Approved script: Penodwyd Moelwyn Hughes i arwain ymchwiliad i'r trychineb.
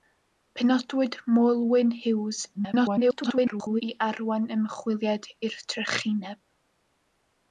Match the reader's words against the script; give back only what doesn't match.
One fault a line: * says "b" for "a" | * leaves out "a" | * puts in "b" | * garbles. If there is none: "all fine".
* garbles